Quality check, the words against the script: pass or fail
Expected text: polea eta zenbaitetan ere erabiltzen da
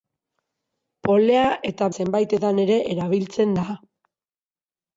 pass